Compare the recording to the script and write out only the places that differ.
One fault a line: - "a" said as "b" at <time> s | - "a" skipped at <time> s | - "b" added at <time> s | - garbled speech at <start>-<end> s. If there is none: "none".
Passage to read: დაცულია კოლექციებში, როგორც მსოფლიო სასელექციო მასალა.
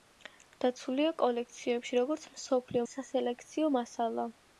none